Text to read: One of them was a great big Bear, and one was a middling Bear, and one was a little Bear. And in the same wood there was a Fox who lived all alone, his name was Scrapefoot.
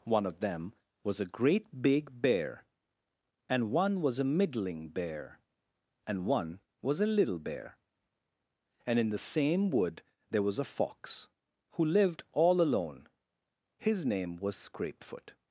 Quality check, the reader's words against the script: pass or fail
pass